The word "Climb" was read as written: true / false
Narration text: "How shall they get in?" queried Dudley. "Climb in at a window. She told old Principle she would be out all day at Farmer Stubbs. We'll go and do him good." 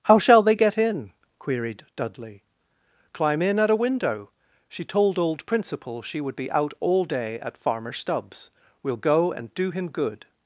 true